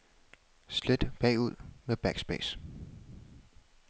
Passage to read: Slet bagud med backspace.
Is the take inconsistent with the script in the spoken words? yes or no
no